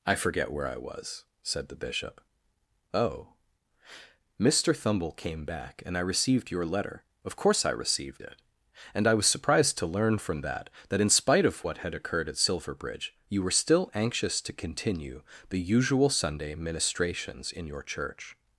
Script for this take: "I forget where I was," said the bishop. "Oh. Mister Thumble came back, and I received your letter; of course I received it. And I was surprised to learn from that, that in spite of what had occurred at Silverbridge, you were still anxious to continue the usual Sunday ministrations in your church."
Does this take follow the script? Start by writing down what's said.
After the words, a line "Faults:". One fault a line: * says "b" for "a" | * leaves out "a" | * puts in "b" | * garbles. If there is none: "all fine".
"I forget where I was," said the bishop. "Oh. Mister Thumble came back, and I received your letter; of course I received it. And I was surprised to learn from that, that in spite of what had occurred at Silverbridge, you were still anxious to continue the usual Sunday ministrations in your church."
Faults:
all fine